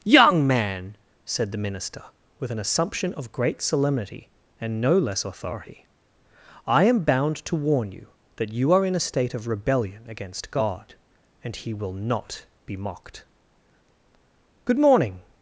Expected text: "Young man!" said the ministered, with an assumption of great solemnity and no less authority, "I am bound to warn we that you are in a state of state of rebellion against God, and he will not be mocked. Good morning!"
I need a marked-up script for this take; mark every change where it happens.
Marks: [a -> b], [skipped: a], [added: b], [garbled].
"Young man!" said the [ministered, -> minister] with an assumption of great solemnity and no less authority, "I am bound to warn [we -> you] that you are in a state of [skipped: state of] rebellion against God, and he will not be mocked. Good morning!"